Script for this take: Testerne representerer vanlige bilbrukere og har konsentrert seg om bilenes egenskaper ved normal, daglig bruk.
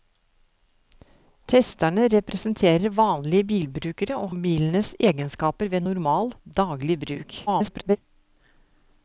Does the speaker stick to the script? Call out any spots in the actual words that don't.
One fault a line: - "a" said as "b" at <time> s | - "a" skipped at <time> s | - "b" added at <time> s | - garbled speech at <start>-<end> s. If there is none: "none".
- "har konsentrert seg" skipped at 4.3 s
- garbled speech at 7.5-8.0 s